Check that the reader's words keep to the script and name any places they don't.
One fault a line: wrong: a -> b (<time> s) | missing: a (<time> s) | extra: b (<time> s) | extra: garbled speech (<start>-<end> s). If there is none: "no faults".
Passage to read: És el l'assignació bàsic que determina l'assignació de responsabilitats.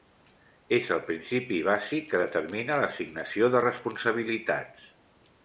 wrong: l'assignació -> principi (1.1 s)